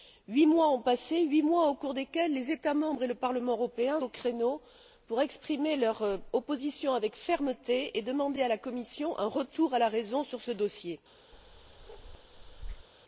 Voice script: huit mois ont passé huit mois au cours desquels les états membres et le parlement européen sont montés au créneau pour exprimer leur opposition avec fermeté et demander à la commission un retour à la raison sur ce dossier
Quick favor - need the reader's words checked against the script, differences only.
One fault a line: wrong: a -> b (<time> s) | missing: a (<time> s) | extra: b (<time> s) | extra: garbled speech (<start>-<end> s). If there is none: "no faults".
missing: sont montés (4.0 s)